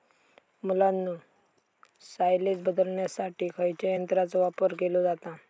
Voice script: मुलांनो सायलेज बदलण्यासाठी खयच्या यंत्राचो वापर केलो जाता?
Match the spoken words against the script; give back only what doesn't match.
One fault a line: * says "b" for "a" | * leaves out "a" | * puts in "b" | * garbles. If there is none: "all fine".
all fine